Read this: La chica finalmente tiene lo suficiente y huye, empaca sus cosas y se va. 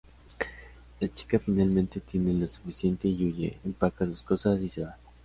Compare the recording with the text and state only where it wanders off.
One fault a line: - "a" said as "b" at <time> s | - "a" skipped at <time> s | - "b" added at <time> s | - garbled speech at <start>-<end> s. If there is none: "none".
none